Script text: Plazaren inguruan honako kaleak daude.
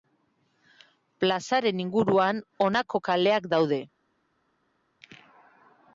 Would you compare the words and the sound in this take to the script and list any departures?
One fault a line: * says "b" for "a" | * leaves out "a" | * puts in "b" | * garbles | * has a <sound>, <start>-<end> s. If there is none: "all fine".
all fine